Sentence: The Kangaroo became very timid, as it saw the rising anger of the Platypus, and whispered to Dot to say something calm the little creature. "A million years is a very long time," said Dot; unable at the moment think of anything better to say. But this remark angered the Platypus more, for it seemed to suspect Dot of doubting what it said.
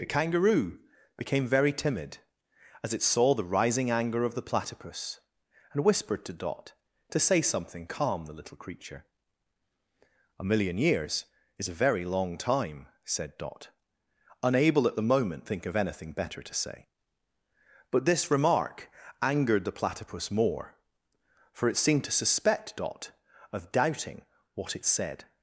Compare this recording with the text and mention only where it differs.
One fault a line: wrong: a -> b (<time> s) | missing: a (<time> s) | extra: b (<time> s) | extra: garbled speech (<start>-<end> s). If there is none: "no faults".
no faults